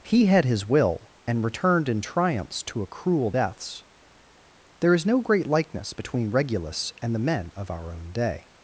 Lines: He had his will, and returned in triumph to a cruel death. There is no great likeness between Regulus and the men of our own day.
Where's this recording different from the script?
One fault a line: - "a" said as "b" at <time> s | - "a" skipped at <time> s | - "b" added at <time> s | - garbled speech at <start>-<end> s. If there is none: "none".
- "triumph" said as "triumphs" at 2.0 s
- "death" said as "deaths" at 3.3 s